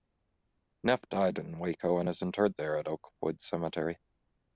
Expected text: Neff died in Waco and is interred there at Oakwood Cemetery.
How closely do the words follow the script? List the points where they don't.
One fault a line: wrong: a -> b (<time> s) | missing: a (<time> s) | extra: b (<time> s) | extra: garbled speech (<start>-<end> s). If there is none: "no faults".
no faults